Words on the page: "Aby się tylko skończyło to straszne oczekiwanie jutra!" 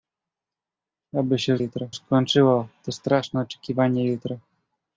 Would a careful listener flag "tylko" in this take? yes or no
yes